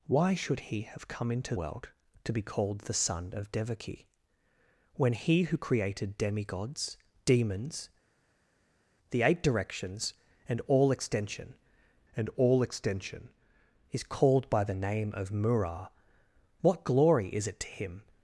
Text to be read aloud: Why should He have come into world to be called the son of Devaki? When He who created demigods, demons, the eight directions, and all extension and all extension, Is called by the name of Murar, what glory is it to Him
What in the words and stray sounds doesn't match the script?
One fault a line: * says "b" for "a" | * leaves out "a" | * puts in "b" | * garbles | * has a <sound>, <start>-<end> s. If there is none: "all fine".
all fine